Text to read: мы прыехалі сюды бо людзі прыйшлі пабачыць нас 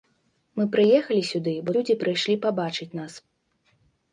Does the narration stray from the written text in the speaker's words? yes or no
no